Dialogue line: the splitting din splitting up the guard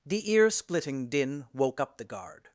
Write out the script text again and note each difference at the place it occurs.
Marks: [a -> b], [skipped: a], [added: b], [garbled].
the [added: ear] splitting din [splitting -> woke] up the guard